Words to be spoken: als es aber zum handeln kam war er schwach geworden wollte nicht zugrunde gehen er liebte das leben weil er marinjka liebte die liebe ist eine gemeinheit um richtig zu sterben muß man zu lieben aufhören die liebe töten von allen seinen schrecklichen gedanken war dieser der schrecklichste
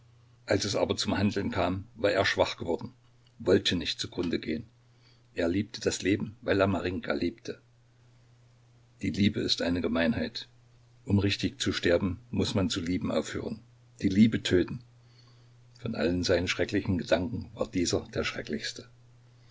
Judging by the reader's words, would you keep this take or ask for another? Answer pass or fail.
pass